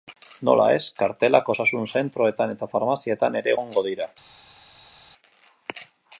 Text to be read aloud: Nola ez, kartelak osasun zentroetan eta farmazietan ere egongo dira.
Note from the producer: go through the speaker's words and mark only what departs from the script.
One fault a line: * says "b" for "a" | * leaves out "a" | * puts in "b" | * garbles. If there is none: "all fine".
all fine